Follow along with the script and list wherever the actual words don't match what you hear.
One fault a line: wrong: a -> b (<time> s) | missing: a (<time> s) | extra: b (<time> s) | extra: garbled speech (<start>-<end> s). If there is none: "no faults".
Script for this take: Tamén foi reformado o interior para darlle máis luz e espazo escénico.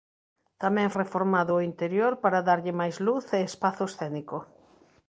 missing: foi (0.9 s)